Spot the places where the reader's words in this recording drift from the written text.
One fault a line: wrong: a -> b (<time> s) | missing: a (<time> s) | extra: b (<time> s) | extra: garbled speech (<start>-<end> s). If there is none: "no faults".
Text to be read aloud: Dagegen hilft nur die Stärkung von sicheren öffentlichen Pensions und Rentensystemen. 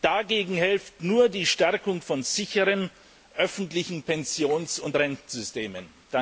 no faults